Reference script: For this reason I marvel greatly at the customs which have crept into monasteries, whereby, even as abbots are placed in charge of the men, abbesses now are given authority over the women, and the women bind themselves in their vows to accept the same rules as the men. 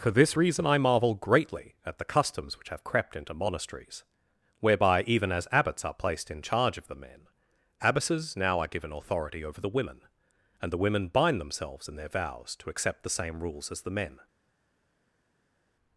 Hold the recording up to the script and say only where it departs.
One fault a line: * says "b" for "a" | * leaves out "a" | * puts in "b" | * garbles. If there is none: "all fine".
all fine